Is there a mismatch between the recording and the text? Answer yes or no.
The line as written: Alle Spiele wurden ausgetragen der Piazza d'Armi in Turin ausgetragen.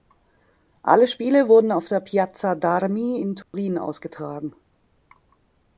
yes